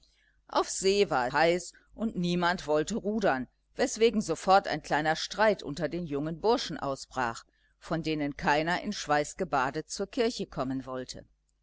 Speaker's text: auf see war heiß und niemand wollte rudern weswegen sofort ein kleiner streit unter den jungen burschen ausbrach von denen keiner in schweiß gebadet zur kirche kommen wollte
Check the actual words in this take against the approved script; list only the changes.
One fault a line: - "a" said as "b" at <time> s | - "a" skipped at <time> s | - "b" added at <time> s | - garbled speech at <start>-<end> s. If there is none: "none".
none